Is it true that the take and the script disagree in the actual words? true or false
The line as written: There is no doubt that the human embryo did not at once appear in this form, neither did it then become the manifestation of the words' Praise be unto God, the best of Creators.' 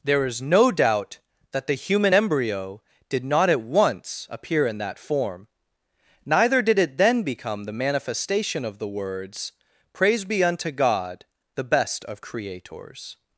true